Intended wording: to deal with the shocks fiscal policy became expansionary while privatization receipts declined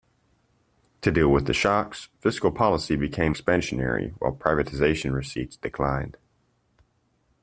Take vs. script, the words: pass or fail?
pass